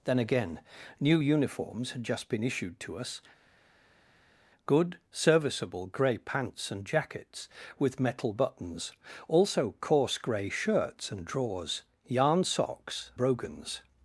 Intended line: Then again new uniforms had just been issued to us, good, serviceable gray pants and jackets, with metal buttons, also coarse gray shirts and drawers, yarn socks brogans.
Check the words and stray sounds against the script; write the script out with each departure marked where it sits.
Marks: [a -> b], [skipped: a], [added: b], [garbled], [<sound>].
Then again new uniforms had just been issued to us, good, serviceable gray pants and jackets, with metal buttons, also coarse gray shirts and drawers, yarn socks brogans.